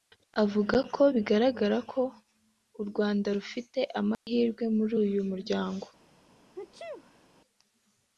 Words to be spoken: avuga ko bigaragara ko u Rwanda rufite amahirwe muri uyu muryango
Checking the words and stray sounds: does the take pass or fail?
fail